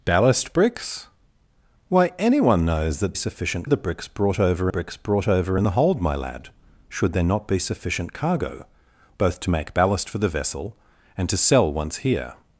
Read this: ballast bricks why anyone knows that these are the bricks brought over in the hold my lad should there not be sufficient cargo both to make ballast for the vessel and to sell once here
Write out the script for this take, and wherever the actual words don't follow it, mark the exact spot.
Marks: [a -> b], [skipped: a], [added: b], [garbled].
ballast bricks why anyone knows that [these -> sufficient] are the bricks brought over [added: bricks brought over] in the hold my lad should there not be sufficient cargo both to make ballast for the vessel and to sell once here